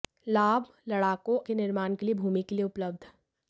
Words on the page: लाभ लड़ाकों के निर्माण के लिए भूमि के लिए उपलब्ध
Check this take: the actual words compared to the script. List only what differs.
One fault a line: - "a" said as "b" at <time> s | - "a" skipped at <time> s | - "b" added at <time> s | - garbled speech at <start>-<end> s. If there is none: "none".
none